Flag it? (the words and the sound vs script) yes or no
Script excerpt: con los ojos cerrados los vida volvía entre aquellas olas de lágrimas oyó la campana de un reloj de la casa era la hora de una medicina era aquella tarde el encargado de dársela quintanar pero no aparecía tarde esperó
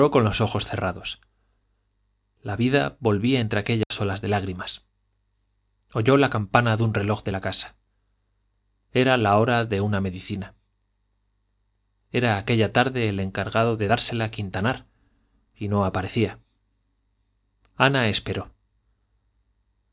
yes